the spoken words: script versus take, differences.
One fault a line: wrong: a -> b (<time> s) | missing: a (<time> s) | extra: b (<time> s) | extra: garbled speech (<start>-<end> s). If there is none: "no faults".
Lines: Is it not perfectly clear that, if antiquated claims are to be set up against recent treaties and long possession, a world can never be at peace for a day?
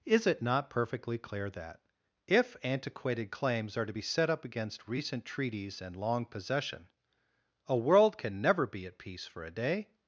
no faults